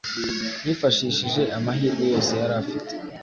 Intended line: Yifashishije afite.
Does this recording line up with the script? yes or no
no